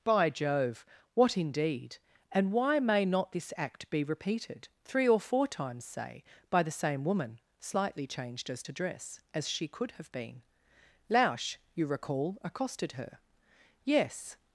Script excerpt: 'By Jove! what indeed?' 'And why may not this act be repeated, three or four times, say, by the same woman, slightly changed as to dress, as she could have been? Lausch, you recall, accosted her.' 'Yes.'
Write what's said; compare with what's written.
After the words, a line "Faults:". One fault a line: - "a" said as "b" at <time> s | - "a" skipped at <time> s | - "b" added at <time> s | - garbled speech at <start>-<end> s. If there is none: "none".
'By Jove! what indeed?' 'And why may not this act be repeated, three or four times, say, by the same woman, slightly changed as to dress, as she could have been? Lausch, you recall, accosted her.' 'Yes.'
Faults:
none